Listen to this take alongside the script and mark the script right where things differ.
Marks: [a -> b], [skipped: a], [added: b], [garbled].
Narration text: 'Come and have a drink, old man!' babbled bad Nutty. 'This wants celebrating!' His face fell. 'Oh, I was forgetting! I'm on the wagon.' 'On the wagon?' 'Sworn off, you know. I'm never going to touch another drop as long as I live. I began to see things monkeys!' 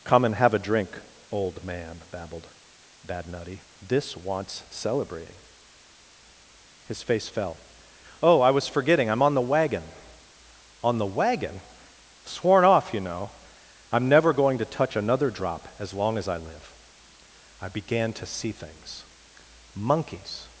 'Come and have a drink, old man!' babbled bad Nutty. 'This wants celebrating!' His face fell. 'Oh, I was forgetting! I'm on the wagon.' 'On the wagon?' 'Sworn off, you know. I'm never going to touch another drop as long as I live. I began to see things monkeys!'